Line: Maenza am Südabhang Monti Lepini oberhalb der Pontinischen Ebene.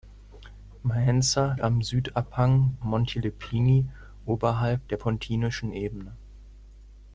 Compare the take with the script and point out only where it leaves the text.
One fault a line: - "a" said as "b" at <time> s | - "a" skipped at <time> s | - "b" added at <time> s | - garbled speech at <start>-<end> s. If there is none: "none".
none